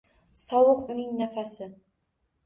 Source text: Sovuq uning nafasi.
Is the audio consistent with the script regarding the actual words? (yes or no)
yes